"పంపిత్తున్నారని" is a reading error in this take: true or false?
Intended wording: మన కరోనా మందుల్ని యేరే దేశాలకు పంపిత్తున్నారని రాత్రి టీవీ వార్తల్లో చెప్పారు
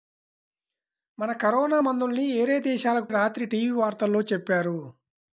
true